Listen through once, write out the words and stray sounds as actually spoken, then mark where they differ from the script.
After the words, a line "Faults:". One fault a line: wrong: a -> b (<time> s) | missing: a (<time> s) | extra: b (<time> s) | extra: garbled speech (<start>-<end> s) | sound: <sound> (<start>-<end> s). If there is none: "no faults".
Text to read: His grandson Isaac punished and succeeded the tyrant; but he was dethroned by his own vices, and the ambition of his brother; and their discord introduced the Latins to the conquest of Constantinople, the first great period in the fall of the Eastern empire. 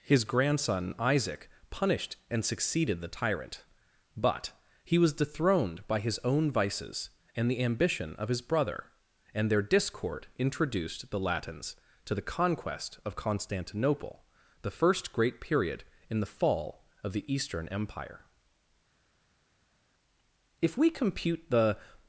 His grandson Isaac punished and succeeded the tyrant; but he was dethroned by his own vices, and the ambition of his brother; and their discord introduced the Latins to the conquest of Constantinople, the first great period in the fall of the Eastern empire. If we compute the
Faults:
extra: If we compute the (20.6 s)